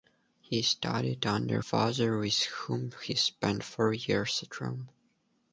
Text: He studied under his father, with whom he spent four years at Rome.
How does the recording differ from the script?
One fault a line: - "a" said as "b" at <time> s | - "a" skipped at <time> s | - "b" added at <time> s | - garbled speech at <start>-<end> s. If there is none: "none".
- "his" skipped at 1.6 s